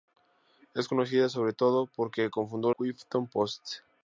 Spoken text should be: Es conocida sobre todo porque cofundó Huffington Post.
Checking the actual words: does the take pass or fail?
pass